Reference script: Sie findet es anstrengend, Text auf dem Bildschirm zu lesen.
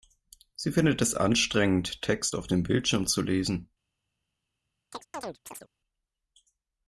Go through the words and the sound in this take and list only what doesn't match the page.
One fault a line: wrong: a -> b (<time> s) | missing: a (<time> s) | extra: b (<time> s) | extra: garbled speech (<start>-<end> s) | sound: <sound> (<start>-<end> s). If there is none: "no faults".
sound: chirp (4.9-5.7 s)